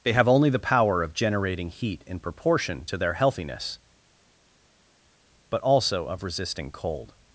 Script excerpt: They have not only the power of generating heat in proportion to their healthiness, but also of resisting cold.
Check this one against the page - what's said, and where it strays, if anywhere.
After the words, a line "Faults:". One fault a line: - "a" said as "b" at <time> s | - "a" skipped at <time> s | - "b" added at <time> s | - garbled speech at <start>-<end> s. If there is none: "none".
They have only the power of generating heat in proportion to their healthiness, but also of resisting cold.
Faults:
- "not" skipped at 0.3 s